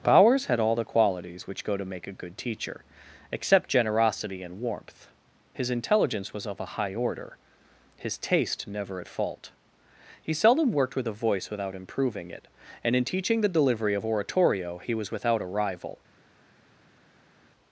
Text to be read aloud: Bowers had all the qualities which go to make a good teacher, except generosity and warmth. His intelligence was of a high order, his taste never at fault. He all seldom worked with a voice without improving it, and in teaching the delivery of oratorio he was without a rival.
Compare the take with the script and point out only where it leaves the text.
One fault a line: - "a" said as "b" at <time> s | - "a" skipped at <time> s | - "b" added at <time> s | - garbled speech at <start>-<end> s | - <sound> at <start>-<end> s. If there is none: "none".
- "all" skipped at 10.3 s